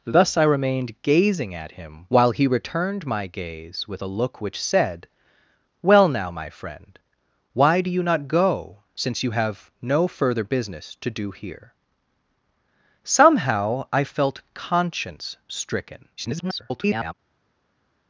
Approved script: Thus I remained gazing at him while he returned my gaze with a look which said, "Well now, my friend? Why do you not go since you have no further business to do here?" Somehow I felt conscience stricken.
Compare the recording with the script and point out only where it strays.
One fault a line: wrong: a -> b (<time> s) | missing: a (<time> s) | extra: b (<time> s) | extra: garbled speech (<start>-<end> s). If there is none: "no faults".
extra: garbled speech (16.2-17.1 s)